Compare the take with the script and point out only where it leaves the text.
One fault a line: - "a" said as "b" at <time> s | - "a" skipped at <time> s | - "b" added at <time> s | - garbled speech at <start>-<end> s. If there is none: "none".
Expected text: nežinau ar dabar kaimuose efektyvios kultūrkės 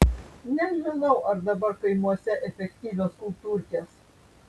none